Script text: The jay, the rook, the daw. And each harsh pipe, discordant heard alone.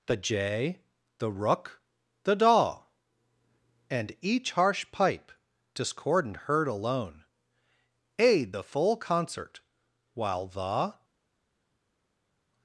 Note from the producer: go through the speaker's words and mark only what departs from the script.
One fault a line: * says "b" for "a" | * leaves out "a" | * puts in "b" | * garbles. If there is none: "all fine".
* puts in "Aid the full concert While the"